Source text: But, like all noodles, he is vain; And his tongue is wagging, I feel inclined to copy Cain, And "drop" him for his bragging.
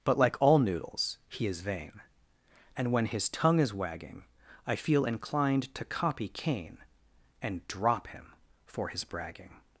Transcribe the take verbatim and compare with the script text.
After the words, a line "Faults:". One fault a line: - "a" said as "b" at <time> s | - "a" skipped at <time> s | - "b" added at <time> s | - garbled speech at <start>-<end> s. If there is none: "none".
But, like all noodles, he is vain; And when his tongue is wagging, I feel inclined to copy Cain, And "drop" him for his bragging.
Faults:
- "when" added at 2.9 s